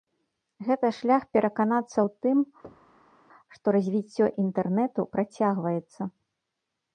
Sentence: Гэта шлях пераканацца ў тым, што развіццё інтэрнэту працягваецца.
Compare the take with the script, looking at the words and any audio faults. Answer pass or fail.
fail